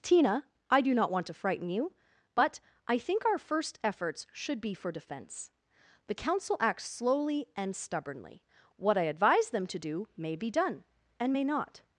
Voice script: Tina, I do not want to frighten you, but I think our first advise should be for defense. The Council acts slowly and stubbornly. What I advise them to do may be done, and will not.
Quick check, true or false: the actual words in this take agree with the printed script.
false